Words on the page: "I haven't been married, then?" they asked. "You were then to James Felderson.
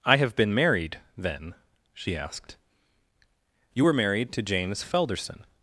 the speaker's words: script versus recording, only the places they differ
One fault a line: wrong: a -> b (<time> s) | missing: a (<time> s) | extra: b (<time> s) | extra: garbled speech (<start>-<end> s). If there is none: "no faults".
wrong: haven't -> have (0.2 s)
wrong: they -> she (1.9 s)
wrong: then -> married (3.9 s)